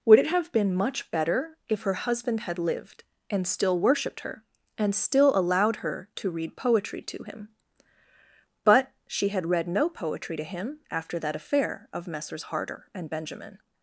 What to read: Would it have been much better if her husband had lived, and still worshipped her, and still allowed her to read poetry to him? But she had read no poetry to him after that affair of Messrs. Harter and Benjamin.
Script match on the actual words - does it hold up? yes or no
yes